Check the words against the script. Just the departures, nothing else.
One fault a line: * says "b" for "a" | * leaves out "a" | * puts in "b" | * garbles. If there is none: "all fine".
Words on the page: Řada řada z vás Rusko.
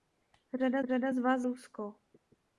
all fine